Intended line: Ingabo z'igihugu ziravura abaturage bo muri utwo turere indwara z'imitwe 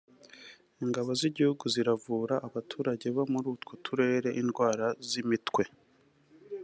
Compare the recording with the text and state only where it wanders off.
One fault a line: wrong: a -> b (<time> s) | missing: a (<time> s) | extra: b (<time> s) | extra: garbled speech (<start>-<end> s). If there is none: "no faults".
no faults